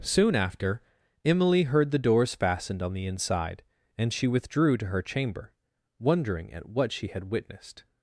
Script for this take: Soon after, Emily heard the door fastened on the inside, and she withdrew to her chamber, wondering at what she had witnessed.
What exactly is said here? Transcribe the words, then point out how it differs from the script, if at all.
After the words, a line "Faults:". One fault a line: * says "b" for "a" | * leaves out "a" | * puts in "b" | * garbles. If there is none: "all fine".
Soon after, Emily heard the doors fastened on the inside, and she withdrew to her chamber, wondering at what she had witnessed.
Faults:
* says "doors" for "door"